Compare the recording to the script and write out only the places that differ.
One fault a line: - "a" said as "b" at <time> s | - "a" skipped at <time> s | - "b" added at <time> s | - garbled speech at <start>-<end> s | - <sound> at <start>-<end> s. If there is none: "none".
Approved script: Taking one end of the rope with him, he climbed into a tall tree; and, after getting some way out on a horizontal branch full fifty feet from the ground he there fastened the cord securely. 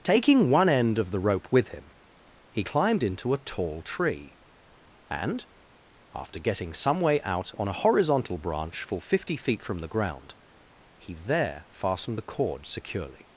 none